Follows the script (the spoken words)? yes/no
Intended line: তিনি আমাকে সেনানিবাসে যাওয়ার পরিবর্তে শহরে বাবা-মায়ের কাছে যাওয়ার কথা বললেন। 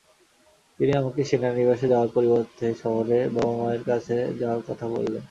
yes